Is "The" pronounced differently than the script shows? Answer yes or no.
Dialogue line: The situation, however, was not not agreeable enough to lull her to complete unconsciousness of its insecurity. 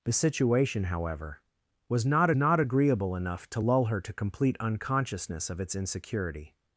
no